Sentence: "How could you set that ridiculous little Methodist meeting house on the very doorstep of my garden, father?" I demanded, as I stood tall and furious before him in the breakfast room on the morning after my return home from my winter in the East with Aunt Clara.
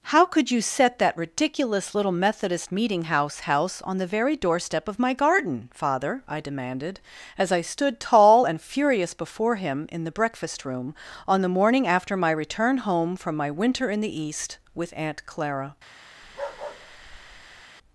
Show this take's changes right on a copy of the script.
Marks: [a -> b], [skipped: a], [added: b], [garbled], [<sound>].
"How could you set that ridiculous little Methodist meeting house [added: house] on the very doorstep of my garden, father?" I demanded, as I stood tall and furious before him in the breakfast room on the morning after my return home from my winter in the East with Aunt Clara. [bark]